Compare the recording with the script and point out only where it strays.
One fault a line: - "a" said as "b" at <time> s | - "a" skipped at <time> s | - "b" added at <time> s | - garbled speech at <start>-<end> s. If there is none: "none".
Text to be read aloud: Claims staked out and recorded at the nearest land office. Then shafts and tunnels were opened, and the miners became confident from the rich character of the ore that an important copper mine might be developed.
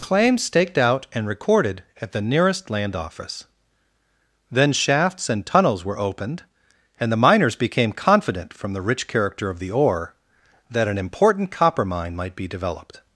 none